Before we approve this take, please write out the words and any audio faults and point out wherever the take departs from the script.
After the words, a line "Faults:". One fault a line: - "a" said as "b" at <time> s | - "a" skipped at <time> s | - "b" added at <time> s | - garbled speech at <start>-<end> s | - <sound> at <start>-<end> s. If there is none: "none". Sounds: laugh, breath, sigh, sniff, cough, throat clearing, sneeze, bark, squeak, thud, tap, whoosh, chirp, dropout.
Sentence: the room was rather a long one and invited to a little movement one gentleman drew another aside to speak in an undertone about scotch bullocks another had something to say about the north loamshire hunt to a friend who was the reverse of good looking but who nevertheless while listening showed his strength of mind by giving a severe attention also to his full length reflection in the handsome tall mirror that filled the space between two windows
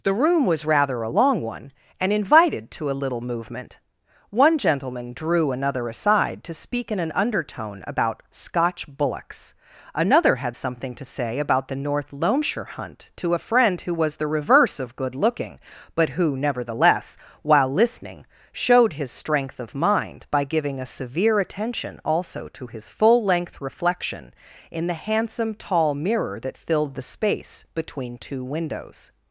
the room was rather a long one and invited to a little movement one gentleman drew another aside to speak in an undertone about scotch bullocks another had something to say about the north loamshire hunt to a friend who was the reverse of good looking but who nevertheless while listening showed his strength of mind by giving a severe attention also to his full length reflection in the handsome tall mirror that filled the space between two windows
Faults:
none